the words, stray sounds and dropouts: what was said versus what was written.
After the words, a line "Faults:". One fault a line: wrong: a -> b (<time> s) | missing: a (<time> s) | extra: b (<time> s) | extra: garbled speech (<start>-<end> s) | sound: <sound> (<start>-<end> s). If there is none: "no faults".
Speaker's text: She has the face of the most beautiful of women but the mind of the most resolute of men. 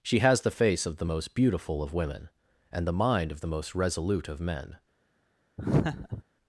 She has the face of the most beautiful of women and the mind of the most resolute of men.
Faults:
wrong: but -> and (2.7 s)
sound: laugh (5.6-6.2 s)